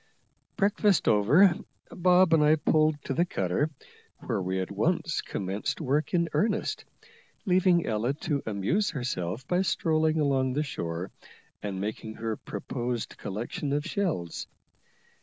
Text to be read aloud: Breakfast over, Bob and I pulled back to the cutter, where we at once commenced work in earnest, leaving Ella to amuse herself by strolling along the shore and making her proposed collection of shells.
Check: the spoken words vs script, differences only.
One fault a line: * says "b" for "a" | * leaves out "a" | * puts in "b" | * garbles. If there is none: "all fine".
* leaves out "back"